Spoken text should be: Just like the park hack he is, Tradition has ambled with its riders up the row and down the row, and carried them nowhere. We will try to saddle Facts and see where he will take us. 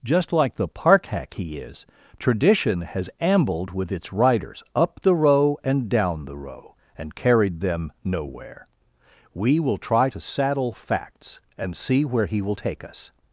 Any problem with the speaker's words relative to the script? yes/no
no